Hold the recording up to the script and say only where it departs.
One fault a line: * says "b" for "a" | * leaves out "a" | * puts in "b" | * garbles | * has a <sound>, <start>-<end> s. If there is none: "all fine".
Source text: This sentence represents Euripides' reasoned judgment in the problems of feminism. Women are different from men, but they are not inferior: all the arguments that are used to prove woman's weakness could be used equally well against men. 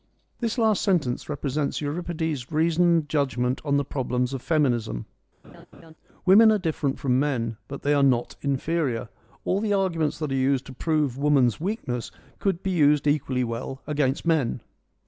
* puts in "last"
* says "on" for "in"
* has a laugh, 5.4-5.9 s